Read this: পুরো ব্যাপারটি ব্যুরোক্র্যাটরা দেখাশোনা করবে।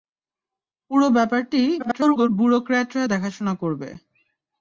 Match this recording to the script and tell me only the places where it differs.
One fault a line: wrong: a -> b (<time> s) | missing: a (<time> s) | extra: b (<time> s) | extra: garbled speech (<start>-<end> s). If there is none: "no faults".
extra: garbled speech (1.8-2.3 s)